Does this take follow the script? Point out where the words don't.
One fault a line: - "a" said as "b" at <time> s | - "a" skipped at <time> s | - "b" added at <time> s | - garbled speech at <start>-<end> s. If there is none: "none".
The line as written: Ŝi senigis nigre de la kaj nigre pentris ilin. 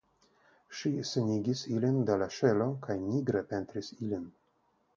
- "nigre" said as "ilin" at 1.8 s
- "ŝelo" added at 2.4 s